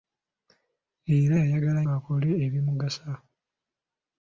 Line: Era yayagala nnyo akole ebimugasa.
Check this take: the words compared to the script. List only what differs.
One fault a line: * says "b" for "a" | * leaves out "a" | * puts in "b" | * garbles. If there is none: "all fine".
* leaves out "nnyo"